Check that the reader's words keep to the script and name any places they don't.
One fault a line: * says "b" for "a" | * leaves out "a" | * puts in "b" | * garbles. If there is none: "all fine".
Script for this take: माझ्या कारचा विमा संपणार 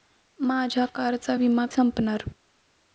all fine